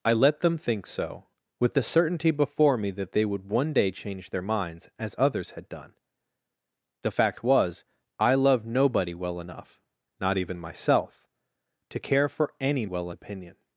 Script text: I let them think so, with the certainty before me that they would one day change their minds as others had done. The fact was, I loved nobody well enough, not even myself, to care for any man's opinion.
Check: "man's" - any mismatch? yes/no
yes